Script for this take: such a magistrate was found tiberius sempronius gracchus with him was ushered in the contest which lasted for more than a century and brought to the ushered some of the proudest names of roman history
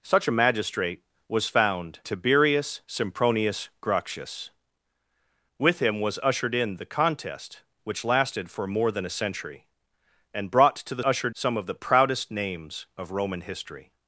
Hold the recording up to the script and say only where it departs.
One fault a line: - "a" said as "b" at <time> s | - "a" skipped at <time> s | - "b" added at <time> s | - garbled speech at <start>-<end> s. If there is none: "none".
none